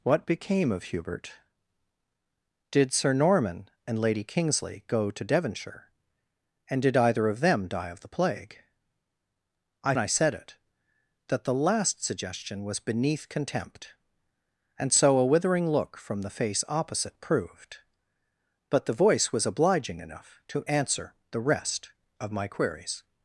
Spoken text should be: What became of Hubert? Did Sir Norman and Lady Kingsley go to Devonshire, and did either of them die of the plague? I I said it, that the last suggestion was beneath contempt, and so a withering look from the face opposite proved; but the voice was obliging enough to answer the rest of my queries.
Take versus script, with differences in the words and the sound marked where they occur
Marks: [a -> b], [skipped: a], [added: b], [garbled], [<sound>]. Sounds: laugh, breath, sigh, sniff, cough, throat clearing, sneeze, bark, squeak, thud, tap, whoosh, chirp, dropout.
What became of Hubert? Did Sir Norman and Lady Kingsley go to Devonshire, and did either of them die of the plague? I I said it, that the last suggestion was beneath contempt, and so a withering look from the face opposite proved; but the voice was obliging enough to answer the rest of my queries.